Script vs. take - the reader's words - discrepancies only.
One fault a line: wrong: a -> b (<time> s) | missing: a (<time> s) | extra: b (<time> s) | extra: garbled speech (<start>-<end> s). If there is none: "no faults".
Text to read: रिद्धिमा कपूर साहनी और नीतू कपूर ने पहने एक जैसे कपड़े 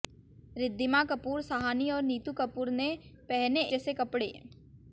missing: एक (3.6 s)